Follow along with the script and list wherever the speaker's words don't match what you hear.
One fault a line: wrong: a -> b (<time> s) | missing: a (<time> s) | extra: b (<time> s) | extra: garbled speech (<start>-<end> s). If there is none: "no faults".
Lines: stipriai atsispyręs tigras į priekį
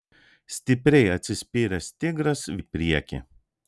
no faults